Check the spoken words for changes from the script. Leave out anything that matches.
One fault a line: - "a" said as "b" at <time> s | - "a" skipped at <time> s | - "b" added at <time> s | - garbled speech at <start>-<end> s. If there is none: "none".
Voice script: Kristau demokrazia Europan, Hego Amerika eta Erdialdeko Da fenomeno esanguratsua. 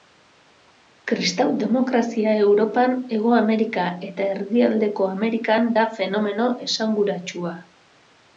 - "Amerikan" added at 5.1 s